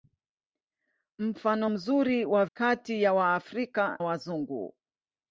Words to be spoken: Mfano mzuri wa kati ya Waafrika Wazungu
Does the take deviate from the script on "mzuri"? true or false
false